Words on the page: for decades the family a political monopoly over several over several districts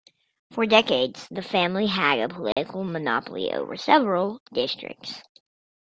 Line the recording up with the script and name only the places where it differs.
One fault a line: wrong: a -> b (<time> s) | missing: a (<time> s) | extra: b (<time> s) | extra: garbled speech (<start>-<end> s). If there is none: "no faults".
extra: had (1.9 s)
missing: over several (4.4 s)